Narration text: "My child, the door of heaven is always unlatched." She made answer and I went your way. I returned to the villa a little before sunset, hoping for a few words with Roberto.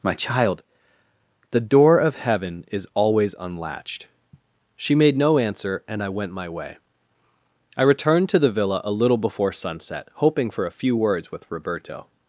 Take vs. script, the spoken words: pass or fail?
fail